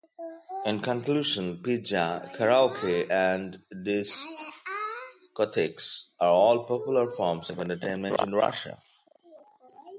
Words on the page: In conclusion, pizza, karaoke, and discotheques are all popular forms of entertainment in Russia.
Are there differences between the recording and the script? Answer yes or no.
no